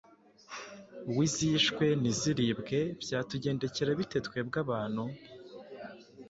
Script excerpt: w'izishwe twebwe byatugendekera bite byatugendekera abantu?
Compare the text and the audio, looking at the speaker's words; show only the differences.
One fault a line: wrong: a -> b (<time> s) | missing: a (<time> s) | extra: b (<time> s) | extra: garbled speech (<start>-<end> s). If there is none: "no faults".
wrong: twebwe -> ntiziribwe (2.0 s)
wrong: byatugendekera -> twebwe (4.3 s)